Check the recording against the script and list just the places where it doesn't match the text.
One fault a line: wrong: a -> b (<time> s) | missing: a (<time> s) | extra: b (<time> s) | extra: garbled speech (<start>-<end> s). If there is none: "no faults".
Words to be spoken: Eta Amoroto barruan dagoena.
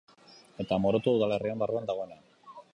extra: udalerriaren (1.2 s)